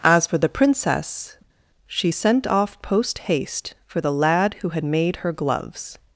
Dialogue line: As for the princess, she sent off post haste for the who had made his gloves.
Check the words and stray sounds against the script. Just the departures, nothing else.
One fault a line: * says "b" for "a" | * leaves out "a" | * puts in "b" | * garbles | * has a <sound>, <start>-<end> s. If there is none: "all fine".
* puts in "lad"
* says "her" for "his"